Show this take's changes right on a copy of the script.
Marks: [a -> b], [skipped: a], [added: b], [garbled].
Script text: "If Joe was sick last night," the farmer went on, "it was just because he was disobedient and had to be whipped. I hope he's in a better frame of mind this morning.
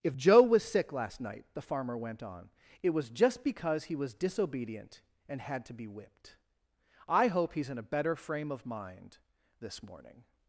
"If Joe was sick last night," the farmer went on, "it was just because he was disobedient and had to be whipped. I hope he's in a better frame of mind this morning.